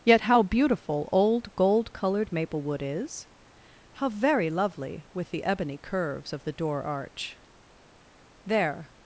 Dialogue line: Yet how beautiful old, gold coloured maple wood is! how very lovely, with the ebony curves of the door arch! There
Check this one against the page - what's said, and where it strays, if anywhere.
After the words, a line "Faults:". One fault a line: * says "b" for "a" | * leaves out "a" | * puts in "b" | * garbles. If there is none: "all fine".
Yet how beautiful old, gold coloured maple wood is! how very lovely, with the ebony curves of the door arch! There
Faults:
all fine